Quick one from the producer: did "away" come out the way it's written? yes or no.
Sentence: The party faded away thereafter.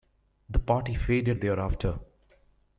no